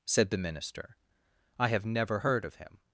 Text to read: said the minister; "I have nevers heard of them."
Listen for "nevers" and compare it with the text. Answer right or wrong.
wrong